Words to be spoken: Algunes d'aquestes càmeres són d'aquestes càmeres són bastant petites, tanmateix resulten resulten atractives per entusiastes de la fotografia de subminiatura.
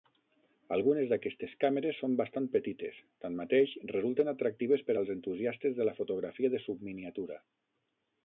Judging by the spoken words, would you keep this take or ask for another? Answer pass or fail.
fail